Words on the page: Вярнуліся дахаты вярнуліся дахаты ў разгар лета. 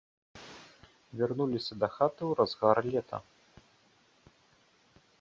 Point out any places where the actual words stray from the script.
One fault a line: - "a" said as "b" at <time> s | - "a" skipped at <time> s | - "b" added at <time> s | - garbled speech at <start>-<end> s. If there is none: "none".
- "вярнуліся дахаты" skipped at 2.2 s